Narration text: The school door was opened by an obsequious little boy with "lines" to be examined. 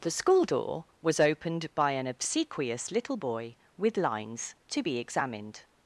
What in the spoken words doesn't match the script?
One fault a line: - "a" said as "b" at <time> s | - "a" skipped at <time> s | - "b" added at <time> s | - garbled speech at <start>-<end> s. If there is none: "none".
none